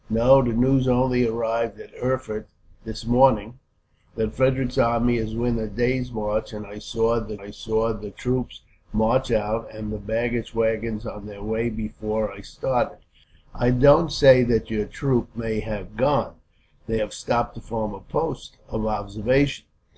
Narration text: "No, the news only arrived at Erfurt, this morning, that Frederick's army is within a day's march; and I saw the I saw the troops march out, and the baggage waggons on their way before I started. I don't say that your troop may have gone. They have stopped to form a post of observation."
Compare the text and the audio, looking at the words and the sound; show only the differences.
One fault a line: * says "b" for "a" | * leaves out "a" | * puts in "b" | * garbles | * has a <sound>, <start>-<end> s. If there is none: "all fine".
all fine